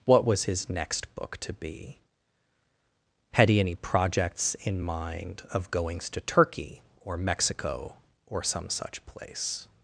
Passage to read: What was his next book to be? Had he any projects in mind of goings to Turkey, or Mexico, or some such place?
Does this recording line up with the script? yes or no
yes